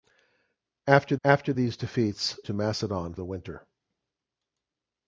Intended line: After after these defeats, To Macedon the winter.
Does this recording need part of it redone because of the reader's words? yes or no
no